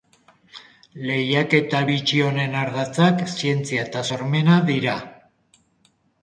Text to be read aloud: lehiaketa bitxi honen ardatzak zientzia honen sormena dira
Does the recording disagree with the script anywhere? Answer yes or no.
yes